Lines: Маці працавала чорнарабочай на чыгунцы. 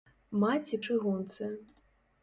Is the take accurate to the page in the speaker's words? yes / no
no